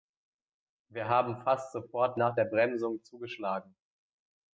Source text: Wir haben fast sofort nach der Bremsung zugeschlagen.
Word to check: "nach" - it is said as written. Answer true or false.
true